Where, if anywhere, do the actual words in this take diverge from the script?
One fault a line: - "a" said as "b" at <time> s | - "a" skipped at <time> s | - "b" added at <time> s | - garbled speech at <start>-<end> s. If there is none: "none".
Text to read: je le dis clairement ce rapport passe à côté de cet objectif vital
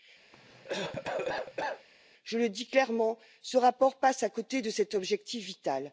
none